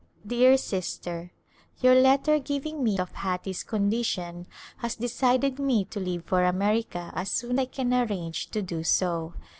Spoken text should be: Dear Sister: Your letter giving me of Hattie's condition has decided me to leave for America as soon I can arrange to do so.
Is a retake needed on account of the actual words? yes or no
no